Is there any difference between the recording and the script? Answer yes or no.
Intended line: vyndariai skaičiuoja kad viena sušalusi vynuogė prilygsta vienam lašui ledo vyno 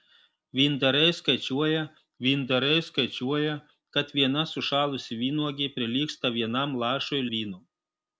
yes